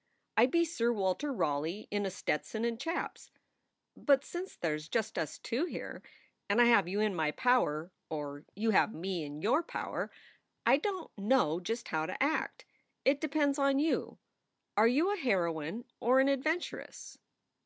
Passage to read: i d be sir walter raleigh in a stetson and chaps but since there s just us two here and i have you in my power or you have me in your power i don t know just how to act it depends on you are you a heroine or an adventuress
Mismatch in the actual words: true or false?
false